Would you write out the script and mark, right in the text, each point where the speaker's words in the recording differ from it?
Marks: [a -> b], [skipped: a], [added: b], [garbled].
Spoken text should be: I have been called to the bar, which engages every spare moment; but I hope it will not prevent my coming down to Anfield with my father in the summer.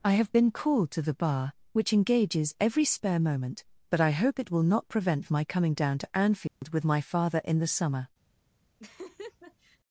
I have been called to the bar, which engages every spare moment; but I hope it will not prevent my coming down to Anfield with my father in the summer.